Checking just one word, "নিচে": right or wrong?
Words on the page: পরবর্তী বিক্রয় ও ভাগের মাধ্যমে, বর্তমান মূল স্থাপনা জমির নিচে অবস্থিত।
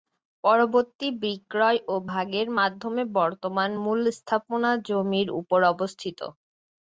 wrong